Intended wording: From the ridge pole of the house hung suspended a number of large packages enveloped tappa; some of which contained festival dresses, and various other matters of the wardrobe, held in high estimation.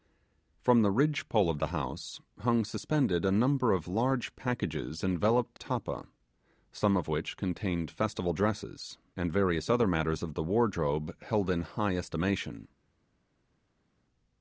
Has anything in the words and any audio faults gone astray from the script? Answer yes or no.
no